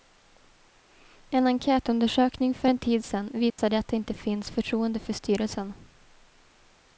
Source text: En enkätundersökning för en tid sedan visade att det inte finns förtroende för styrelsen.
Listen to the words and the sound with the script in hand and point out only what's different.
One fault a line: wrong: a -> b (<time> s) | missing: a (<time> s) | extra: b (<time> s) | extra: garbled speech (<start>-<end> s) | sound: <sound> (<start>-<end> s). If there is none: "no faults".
sound: dropout (3.5-3.6 s)